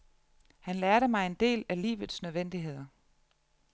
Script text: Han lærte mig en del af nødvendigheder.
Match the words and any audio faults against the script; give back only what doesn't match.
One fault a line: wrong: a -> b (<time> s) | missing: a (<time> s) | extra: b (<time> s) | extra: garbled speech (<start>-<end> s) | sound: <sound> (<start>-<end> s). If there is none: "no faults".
extra: livets (1.8 s)